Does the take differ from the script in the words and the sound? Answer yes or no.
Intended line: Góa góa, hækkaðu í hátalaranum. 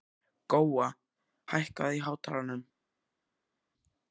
yes